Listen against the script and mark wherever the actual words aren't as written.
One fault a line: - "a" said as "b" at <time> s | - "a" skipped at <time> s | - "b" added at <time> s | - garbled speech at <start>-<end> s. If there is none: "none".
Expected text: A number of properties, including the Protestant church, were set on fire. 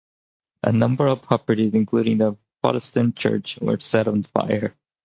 none